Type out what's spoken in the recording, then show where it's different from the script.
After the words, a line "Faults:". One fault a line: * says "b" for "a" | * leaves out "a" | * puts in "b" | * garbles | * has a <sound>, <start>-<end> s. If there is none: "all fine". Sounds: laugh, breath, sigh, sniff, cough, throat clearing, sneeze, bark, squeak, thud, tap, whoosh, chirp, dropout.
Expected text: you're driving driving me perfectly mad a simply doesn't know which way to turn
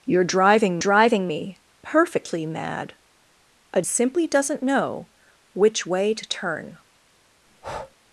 you're driving driving me perfectly mad a simply doesn't know which way to turn
Faults:
* has a breath, 7.5-8.0 s